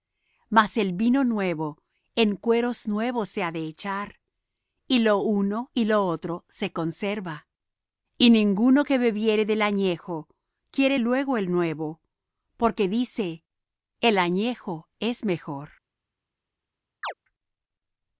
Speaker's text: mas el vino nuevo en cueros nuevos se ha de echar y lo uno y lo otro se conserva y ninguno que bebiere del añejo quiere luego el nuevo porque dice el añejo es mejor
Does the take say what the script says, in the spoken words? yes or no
yes